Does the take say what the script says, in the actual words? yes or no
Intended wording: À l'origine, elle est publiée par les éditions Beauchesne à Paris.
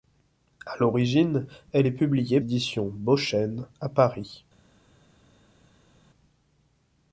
no